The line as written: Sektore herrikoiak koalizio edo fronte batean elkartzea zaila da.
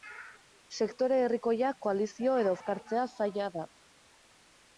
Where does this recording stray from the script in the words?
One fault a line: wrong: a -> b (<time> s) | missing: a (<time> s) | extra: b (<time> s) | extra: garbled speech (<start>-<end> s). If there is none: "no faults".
missing: fronte batean (2.5 s)